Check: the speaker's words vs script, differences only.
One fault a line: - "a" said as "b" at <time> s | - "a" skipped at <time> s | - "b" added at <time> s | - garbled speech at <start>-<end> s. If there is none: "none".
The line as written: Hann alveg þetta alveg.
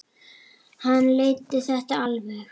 - "alveg" said as "leiddi" at 1.2 s